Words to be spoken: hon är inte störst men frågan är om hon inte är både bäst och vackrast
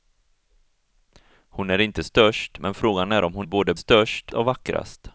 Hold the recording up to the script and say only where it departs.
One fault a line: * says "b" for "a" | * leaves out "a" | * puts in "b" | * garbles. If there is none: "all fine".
* leaves out "inte"
* says "störst" for "bäst"